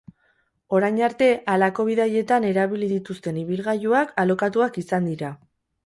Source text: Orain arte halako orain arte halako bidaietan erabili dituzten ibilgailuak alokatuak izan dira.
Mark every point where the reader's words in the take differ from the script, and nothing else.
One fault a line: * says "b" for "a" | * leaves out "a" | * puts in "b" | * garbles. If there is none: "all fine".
* leaves out "orain arte halako"